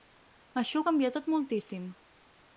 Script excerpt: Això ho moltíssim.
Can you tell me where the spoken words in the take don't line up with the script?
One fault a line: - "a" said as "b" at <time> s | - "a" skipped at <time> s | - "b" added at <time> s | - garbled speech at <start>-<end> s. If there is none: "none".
- "canvia tot" added at 0.9 s